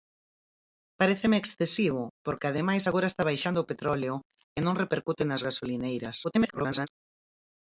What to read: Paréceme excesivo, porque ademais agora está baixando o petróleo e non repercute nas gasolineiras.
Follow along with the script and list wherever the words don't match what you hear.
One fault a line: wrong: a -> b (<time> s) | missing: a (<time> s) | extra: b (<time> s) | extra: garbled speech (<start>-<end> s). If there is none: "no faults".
extra: garbled speech (6.2-6.9 s)